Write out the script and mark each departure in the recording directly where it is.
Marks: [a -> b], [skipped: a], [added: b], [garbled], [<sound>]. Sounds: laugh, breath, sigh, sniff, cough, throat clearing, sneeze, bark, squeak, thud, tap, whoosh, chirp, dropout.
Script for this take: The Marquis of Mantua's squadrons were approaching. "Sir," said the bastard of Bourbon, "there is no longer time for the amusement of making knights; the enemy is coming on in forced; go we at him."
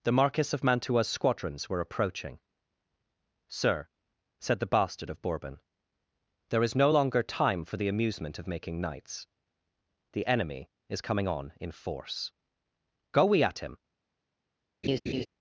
The Marquis of Mantua's squadrons were approaching. "Sir," said the bastard of Bourbon, "there is no longer time for the amusement of making knights; the enemy is coming on in [forced; -> force] go we at him." [laugh]